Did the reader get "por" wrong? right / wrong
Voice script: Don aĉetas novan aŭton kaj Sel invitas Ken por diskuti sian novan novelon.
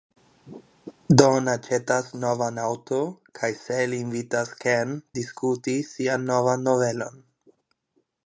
wrong